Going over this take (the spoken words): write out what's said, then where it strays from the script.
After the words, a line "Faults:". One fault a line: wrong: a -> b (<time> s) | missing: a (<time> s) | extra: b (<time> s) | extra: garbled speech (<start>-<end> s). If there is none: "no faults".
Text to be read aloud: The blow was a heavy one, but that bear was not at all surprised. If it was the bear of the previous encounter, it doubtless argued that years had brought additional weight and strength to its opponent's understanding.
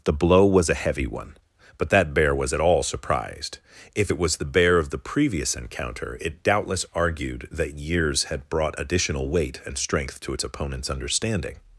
The blow was a heavy one, but that bear was at all surprised. If it was the bear of the previous encounter, it doubtless argued that years had brought additional weight and strength to its opponent's understanding.
Faults:
missing: not (2.5 s)